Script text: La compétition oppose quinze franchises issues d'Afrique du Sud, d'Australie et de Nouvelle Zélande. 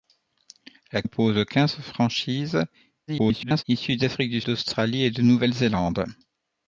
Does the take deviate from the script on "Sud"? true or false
true